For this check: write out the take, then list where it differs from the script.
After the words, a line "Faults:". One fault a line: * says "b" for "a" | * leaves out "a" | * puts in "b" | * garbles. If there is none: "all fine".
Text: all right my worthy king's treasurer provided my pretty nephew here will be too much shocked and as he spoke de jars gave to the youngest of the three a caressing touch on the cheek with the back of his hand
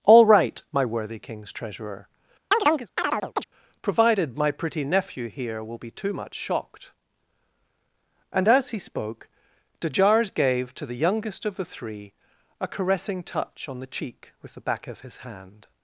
all right my worthy king's treasurer provided my pretty nephew here will be too much shocked and as he spoke de jars gave to the youngest of the three a caressing touch on the cheek with the back of his hand
Faults:
all fine